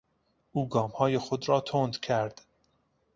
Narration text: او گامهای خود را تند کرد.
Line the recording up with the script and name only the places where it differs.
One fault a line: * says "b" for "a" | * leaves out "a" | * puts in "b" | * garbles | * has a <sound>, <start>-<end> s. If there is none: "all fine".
all fine